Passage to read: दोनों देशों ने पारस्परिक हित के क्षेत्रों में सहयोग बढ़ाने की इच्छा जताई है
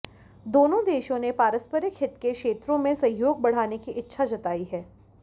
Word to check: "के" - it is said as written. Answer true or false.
true